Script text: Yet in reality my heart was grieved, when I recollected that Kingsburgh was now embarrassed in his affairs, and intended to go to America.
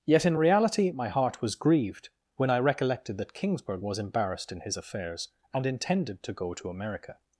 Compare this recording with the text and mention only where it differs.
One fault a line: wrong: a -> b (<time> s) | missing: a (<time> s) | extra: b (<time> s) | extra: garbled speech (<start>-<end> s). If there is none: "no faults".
missing: now (4.0 s)